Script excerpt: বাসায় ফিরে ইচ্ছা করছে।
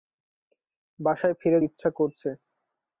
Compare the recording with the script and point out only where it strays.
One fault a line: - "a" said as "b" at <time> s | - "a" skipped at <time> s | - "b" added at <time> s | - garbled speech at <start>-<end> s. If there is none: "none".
none